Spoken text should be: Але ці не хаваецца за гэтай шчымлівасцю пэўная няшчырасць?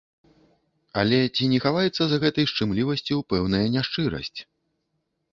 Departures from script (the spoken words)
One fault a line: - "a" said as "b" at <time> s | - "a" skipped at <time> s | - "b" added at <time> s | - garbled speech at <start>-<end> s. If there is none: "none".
none